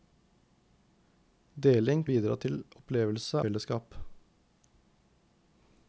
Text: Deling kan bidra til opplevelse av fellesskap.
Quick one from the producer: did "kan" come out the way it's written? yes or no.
no